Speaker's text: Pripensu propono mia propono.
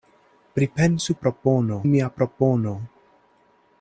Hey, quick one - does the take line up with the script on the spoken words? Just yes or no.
yes